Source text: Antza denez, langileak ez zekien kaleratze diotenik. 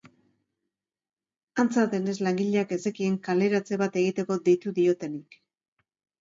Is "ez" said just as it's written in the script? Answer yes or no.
yes